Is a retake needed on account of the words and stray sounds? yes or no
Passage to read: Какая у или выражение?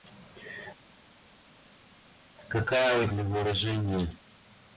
no